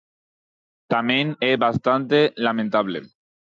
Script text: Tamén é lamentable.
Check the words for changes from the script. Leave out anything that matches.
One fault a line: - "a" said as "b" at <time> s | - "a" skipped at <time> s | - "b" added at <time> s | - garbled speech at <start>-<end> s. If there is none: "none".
- "bastante" added at 1.7 s